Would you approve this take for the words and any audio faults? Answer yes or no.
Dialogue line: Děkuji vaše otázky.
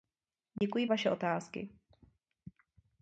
no